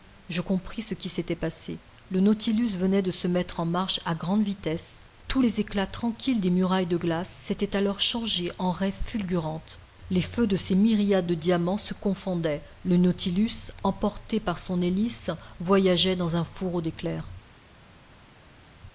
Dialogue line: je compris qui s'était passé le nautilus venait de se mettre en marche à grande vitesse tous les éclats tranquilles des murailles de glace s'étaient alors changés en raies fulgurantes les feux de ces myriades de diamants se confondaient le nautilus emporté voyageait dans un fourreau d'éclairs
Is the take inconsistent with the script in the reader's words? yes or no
yes